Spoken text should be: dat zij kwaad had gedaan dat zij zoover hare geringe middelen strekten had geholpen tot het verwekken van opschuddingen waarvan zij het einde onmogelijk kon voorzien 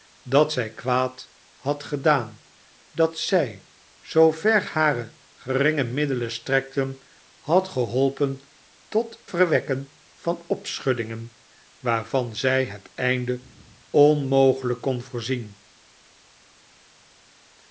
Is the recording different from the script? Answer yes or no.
yes